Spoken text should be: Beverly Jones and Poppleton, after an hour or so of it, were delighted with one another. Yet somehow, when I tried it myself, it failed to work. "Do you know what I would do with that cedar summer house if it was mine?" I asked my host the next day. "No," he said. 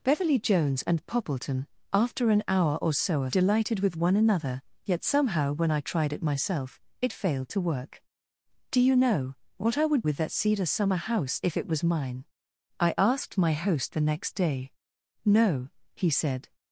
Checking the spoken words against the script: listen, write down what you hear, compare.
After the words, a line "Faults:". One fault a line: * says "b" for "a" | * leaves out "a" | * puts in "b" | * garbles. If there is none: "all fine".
Beverly Jones and Poppleton, after an hour or so of delighted with one another. Yet somehow, when I tried it myself, it failed to work. "Do you know what I would with that cedar summer house if it was mine?" I asked my host the next day. "No," he said.
Faults:
* leaves out "it were"
* leaves out "do"